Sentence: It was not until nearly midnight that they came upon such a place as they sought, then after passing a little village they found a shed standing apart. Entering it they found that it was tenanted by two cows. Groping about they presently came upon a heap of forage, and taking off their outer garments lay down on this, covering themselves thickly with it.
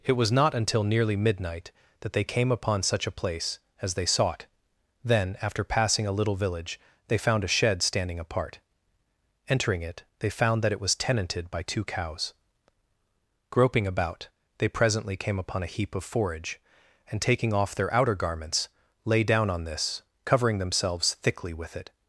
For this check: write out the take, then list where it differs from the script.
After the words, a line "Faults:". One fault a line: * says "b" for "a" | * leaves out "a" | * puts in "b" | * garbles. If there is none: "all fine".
It was not until nearly midnight that they came upon such a place as they sought, then after passing a little village they found a shed standing apart. Entering it they found that it was tenanted by two cows. Groping about they presently came upon a heap of forage, and taking off their outer garments lay down on this, covering themselves thickly with it.
Faults:
all fine